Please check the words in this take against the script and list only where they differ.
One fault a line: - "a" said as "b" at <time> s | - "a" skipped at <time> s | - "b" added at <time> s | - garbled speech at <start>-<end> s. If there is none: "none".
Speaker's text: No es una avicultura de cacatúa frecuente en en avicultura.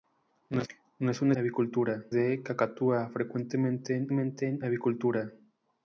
none